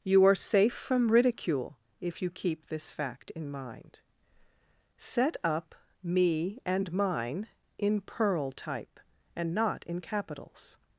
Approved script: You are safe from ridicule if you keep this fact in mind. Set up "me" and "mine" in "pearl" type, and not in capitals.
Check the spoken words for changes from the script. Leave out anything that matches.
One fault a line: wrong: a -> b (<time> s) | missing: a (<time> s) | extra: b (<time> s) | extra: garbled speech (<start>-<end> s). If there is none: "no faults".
no faults